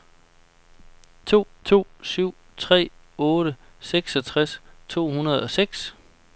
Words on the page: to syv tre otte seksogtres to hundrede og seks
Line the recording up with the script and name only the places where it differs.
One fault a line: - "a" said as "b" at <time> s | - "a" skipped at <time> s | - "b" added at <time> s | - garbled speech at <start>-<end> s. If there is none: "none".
- "to" added at 1.6 s